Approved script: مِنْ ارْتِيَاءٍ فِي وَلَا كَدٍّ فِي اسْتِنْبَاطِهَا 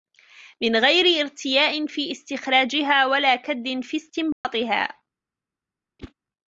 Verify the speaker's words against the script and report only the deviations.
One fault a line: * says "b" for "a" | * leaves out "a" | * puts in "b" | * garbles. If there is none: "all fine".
* puts in "غَيْرِ"
* puts in "اسْتِخْرَاجِهَا"